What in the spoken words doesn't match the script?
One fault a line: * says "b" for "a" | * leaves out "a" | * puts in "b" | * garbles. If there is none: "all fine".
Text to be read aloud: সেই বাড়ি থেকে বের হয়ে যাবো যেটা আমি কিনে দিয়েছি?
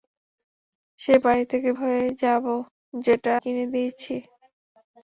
* leaves out "বের"
* leaves out "আমি"